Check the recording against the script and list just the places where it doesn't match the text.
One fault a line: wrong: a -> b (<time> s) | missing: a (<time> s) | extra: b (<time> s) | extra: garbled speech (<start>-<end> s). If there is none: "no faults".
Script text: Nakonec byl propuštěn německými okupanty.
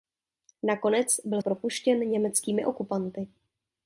no faults